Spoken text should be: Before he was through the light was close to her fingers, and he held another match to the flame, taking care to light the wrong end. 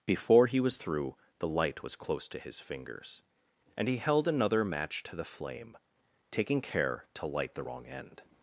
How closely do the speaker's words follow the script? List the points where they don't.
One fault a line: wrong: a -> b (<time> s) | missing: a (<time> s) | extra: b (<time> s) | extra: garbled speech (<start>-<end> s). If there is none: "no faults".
wrong: her -> his (2.4 s)